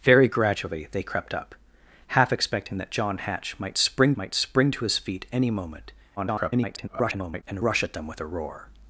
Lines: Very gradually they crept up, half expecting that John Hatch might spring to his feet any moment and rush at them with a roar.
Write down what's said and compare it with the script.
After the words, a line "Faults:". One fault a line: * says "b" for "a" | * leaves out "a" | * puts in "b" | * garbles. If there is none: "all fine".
Very gradually they crept up, half expecting that John Hatch might spring might spring to his feet any moment [garbled] and rush at them with a roar.
Faults:
* puts in "might spring"
* garbles